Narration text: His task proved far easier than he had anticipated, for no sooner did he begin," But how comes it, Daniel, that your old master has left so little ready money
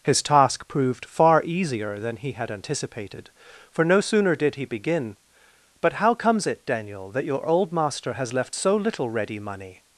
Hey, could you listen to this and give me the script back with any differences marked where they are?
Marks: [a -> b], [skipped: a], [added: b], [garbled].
His task proved far easier than he had anticipated, for no sooner did he begin," But how comes it, Daniel, that your old master has left so little ready money